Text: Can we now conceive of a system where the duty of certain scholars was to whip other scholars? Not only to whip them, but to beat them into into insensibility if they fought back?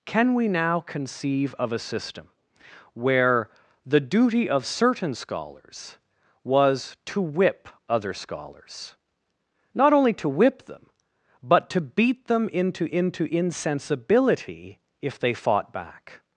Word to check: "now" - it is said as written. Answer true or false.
true